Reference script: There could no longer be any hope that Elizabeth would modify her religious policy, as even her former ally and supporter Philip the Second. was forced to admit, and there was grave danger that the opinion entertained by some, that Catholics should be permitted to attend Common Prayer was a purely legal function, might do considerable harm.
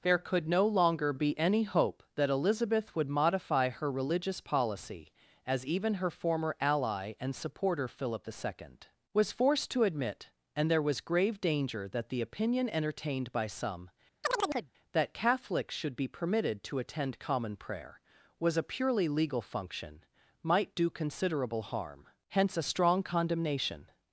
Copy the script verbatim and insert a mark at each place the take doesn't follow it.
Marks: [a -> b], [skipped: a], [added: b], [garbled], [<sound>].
There could no longer be any hope that Elizabeth would modify her religious policy, as even her former ally and supporter Philip the Second. was forced to admit, and there was grave danger that the opinion entertained by some, [chirp] that Catholics should be permitted to attend Common Prayer was a purely legal function, might do considerable harm. [added: Hence a strong condemnation]